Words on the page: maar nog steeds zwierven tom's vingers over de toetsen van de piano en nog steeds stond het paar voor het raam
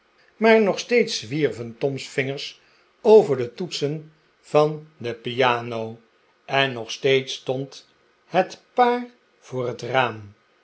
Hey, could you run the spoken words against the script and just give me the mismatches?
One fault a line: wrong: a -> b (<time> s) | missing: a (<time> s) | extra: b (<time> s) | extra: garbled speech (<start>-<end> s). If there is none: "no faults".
no faults